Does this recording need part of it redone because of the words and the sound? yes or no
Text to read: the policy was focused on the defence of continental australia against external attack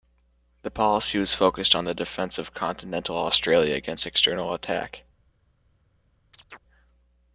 yes